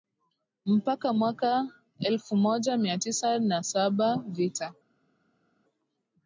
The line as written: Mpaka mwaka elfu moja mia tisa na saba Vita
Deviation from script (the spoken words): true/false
false